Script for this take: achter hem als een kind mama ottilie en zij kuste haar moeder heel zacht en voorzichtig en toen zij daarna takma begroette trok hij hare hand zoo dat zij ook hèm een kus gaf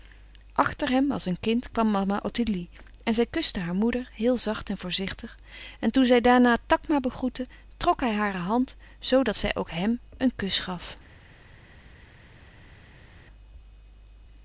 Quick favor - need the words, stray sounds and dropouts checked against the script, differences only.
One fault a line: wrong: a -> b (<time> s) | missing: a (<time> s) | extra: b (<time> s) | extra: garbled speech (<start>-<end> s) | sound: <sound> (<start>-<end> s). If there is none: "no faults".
extra: kwam (1.7 s)